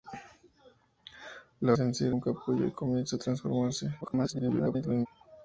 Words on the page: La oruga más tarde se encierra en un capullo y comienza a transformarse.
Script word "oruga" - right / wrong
wrong